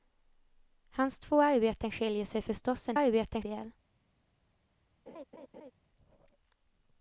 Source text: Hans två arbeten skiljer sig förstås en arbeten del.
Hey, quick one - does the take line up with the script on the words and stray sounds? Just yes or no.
no